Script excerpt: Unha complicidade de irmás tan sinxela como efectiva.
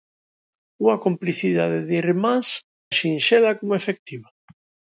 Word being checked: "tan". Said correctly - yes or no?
no